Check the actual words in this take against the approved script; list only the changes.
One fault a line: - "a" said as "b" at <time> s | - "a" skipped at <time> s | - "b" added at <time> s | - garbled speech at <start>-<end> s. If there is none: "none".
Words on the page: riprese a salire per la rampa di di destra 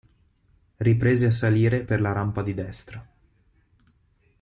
- "di" skipped at 2.5 s